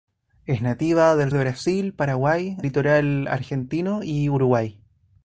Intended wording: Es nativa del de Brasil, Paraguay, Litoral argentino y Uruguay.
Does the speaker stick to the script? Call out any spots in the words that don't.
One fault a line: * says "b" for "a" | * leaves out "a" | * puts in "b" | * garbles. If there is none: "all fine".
all fine